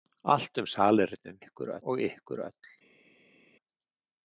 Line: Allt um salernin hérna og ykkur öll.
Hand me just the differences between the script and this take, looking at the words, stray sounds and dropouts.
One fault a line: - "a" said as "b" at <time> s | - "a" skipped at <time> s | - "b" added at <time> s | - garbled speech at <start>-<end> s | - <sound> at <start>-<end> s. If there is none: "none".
- "hérna" said as "ykkur" at 1.4 s